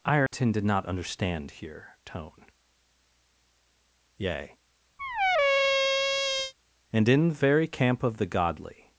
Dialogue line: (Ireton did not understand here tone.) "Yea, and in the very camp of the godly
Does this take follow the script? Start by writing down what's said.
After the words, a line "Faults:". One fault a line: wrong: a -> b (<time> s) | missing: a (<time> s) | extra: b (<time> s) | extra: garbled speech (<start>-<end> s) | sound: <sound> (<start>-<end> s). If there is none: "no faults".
(Ireton did not understand here tone.) "Yea, and in the very camp of the godly
Faults:
sound: dropout (0.3-0.3 s)
sound: squeak (5.0-6.5 s)